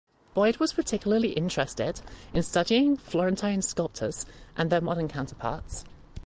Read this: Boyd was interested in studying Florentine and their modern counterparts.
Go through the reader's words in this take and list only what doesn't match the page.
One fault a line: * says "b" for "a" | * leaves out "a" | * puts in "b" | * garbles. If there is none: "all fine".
* puts in "particularly"
* puts in "sculptors"